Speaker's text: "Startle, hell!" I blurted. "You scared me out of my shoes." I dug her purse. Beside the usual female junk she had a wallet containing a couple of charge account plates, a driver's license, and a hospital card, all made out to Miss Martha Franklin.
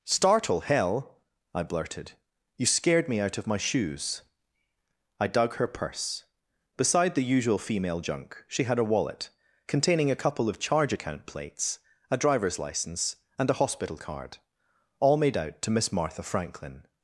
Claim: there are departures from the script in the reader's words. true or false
false